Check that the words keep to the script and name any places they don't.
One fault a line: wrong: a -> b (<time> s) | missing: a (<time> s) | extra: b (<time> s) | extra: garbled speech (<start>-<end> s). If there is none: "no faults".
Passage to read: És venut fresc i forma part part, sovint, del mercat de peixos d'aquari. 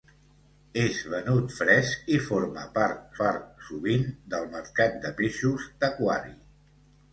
no faults